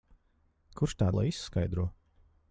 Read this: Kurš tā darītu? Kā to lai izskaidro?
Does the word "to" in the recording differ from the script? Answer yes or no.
yes